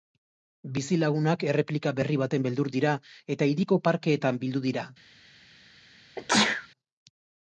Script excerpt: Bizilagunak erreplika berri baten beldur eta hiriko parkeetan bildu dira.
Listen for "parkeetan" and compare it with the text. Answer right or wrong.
right